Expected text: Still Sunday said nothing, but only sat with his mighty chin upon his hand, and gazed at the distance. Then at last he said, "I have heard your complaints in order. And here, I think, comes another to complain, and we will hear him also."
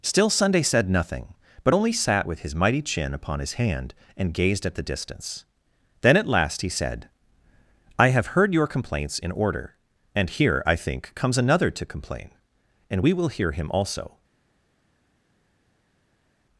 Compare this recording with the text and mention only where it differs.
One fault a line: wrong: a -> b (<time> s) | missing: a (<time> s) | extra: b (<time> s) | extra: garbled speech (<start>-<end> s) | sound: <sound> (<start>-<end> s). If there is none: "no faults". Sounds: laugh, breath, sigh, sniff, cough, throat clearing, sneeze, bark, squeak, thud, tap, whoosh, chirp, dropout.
no faults